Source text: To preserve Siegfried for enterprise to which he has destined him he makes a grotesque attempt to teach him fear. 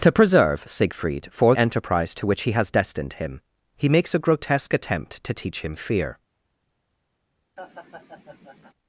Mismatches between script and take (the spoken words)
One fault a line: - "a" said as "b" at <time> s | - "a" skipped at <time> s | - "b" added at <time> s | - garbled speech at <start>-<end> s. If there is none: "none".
none